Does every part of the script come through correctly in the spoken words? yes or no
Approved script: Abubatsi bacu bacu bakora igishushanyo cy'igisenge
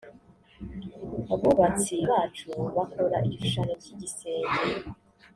no